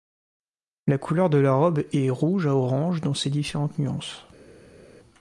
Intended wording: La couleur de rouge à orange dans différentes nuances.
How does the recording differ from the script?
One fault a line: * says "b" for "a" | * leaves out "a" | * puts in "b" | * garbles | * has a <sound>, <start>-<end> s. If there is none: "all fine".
* puts in "la robe est"
* puts in "ses"